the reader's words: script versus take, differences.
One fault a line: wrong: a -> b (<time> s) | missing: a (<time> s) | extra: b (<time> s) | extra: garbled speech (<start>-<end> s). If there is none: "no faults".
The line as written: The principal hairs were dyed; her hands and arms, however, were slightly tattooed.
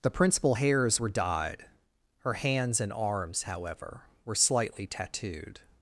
no faults